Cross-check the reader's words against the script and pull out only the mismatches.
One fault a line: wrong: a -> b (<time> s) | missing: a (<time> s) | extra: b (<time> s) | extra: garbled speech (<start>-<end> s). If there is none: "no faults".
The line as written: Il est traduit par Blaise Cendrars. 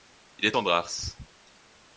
missing: traduit par Blaise (0.5 s)